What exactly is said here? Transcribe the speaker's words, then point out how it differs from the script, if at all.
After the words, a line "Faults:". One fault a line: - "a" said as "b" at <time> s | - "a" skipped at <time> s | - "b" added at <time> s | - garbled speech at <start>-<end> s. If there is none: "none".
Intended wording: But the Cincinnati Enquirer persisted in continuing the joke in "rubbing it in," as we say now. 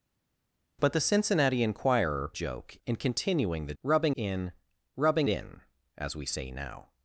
But the Cincinnati Enquirer joke in continuing the rubbing in "rubbing in," as we say now.
Faults:
- "persisted" said as "joke" at 2.3 s
- "joke" said as "rubbing" at 3.8 s
- "it" skipped at 5.3 s